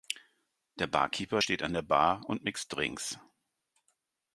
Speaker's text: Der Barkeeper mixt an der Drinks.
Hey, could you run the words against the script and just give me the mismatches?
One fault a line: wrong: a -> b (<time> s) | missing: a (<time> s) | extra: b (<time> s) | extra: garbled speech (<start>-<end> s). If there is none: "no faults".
wrong: mixt -> steht (1.4 s)
extra: Bar und mixt (1.8 s)